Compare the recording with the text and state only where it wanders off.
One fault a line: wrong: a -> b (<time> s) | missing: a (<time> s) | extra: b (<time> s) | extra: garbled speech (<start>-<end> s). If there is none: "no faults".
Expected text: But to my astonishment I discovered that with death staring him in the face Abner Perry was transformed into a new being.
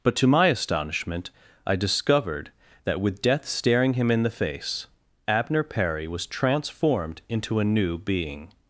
no faults